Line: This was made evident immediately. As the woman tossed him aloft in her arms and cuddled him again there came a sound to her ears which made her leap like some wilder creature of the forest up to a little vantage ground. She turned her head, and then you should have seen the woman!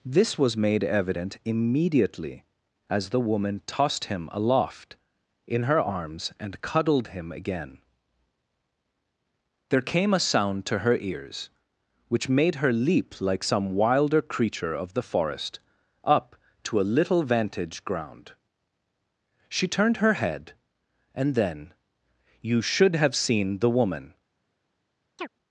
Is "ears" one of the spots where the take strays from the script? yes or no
no